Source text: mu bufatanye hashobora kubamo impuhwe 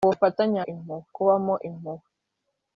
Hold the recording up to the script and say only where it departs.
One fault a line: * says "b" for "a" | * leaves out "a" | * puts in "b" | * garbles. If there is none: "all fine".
* says "impuhwe" for "hashobora"